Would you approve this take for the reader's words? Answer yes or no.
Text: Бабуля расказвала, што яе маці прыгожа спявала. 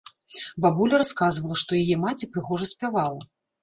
yes